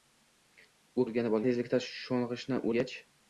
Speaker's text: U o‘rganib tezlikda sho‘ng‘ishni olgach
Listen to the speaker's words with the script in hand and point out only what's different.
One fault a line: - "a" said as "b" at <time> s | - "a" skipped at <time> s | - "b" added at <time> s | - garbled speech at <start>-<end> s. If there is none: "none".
none